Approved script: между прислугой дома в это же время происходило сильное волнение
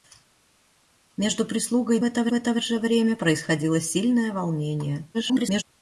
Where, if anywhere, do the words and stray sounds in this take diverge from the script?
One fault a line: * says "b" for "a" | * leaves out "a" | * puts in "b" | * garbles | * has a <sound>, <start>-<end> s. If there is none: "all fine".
* says "это" for "дома"
* garbles